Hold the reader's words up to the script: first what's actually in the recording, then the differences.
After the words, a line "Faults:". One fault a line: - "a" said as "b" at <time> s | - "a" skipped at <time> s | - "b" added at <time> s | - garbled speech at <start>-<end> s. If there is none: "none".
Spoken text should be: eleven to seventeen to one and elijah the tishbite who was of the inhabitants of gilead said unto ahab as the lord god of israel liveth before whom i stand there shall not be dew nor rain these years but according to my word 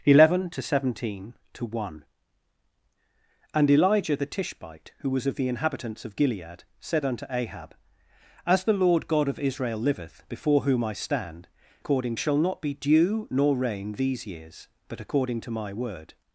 eleven to seventeen to one and elijah the tishbite who was of the inhabitants of gilead said unto ahab as the lord god of israel liveth before whom i stand according shall not be dew nor rain these years but according to my word
Faults:
- "there" said as "according" at 11.8 s